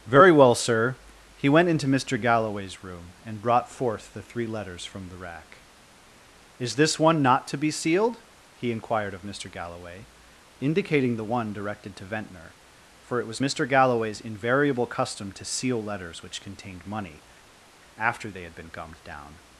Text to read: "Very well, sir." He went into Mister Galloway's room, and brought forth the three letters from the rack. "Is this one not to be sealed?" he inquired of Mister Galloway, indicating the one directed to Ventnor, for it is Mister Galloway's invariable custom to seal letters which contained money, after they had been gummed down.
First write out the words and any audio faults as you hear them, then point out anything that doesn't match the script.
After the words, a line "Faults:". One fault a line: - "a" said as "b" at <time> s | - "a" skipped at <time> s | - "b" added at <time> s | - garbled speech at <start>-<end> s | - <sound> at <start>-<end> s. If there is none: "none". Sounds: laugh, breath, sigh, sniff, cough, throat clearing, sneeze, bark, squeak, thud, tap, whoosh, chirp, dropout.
"Very well, sir." He went into Mister Galloway's room, and brought forth the three letters from the rack. "Is this one not to be sealed?" he inquired of Mister Galloway, indicating the one directed to Ventnor, for it was Mister Galloway's invariable custom to seal letters which contained money, after they had been gummed down.
Faults:
- "is" said as "was" at 13.3 s